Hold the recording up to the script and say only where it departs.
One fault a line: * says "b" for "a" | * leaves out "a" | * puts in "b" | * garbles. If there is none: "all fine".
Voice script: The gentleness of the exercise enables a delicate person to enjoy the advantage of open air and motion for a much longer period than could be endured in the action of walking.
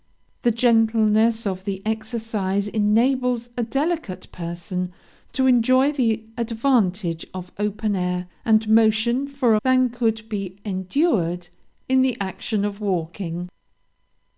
* leaves out "much longer period"